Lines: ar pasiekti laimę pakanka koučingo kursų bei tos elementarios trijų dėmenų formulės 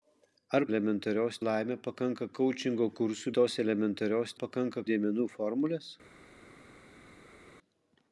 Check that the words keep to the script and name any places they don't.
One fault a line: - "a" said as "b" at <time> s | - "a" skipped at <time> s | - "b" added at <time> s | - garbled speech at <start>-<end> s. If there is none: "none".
- "pasiekti" said as "elementarios" at 0.7 s
- "bei" skipped at 3.3 s
- "trijų" said as "pakanka" at 4.4 s